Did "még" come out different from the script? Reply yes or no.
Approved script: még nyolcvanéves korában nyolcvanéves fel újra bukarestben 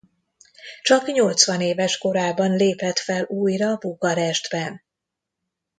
yes